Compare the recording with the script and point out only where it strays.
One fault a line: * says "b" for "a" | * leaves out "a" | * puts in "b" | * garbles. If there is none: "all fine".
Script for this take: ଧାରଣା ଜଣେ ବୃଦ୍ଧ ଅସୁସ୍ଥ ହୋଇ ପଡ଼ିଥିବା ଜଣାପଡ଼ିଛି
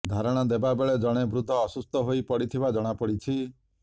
* puts in "ଦେବା ବେଳେ"